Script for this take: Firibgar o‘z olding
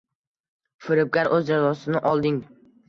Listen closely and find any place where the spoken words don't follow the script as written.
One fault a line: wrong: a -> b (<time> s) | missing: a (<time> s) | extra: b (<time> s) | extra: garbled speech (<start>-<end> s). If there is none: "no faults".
extra: jazosini (1.5 s)